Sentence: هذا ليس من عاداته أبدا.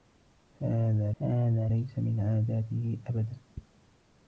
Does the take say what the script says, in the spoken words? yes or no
no